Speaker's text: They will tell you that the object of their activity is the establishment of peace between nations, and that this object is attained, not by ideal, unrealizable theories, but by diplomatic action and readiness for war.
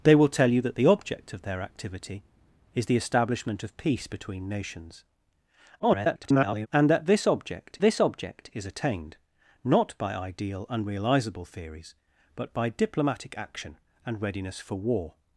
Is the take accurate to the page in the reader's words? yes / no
no